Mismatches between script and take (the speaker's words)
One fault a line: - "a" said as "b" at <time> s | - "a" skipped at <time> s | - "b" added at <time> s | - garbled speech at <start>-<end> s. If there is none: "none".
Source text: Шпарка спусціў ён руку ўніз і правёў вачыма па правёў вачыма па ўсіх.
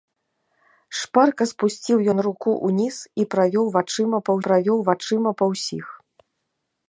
none